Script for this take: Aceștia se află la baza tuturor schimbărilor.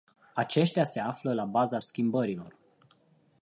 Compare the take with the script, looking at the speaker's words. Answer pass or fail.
fail